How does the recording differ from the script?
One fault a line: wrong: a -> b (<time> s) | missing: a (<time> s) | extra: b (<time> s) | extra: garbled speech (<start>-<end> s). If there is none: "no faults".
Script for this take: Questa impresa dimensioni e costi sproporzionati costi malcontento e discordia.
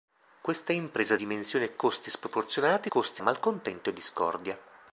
no faults